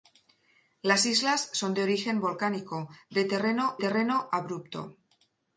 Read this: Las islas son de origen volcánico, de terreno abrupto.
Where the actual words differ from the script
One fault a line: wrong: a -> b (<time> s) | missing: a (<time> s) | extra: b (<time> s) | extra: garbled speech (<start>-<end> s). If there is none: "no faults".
extra: terreno (3.8 s)